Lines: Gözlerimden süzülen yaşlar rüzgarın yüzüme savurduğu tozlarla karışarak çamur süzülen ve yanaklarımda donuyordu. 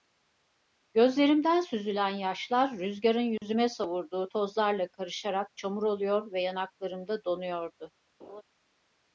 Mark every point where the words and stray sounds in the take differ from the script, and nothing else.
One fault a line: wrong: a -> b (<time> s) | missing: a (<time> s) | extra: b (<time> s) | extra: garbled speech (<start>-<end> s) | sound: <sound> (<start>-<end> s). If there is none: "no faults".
sound: dropout (3.4-3.4 s)
wrong: süzülen -> oluyor (5.8 s)
sound: laugh (8.2-8.4 s)